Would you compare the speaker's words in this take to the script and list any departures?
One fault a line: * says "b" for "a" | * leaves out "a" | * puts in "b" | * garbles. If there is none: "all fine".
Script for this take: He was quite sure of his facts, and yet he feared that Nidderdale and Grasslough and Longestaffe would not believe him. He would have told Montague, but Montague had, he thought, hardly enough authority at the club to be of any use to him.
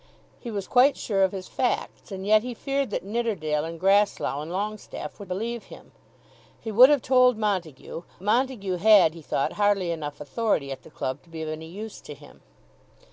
* leaves out "not"
* leaves out "but"